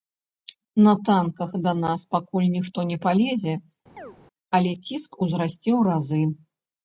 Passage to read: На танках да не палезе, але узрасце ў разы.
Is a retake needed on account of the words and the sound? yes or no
yes